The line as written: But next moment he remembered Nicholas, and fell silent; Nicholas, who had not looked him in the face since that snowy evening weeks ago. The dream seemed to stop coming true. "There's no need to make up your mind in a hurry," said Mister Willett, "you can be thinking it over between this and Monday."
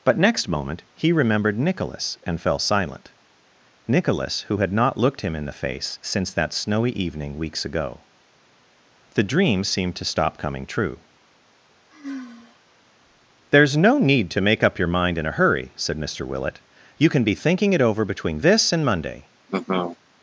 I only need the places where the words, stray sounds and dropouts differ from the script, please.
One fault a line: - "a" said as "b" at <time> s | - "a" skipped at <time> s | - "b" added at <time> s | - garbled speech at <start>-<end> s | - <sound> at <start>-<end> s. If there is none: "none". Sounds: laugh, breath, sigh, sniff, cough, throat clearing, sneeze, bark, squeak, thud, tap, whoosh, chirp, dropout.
- sigh at 11.9-12.6 s
- laugh at 19.5-20.0 s